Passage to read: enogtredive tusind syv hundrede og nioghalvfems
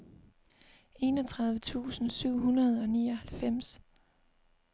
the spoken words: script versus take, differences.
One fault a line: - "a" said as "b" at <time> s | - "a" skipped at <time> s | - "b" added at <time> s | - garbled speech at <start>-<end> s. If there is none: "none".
none